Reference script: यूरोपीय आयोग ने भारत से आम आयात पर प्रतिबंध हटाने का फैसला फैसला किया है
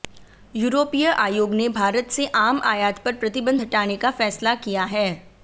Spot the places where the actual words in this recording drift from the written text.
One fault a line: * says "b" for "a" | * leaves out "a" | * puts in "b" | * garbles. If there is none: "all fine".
* leaves out "फैसला"